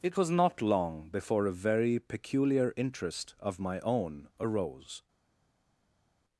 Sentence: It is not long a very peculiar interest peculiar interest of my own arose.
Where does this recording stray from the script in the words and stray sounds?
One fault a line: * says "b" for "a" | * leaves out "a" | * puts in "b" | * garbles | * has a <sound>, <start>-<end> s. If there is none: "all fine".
* says "was" for "is"
* puts in "before"
* leaves out "peculiar interest"